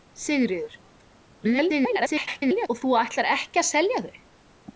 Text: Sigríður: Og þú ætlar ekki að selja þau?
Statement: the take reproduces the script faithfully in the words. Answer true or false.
false